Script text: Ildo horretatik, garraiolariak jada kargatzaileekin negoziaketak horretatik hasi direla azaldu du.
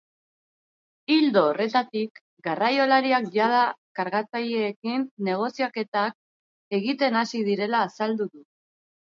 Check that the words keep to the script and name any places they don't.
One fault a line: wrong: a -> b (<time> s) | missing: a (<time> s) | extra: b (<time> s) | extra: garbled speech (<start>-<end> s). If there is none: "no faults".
wrong: horretatik -> egiten (6.8 s)